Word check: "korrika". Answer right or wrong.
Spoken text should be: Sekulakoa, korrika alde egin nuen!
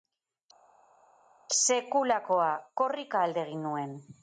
right